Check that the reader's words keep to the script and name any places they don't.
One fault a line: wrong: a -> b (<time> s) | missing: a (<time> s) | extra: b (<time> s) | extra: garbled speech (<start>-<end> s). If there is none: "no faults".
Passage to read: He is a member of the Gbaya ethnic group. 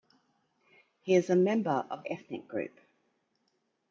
missing: the Gbaya (2.0 s)